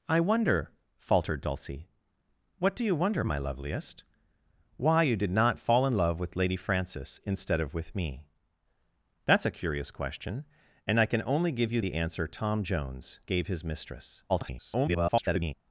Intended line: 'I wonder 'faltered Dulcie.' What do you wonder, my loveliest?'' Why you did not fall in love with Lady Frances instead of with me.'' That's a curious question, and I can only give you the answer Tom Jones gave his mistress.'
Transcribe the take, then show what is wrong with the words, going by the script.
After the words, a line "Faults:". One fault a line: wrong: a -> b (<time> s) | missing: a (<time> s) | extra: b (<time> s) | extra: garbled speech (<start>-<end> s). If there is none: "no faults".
'I wonder 'faltered Dulcie.' What do you wonder, my loveliest?'' Why you did not fall in love with Lady Frances instead of with me.'' That's a curious question, and I can only give you the answer Tom Jones gave his mistress.' [garbled]
Faults:
extra: garbled speech (14.3-15.5 s)